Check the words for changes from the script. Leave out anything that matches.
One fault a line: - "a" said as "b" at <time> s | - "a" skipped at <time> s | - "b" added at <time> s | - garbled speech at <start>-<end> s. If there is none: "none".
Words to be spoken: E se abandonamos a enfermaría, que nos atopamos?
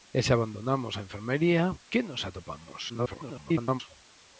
- garbled speech at 2.9-3.8 s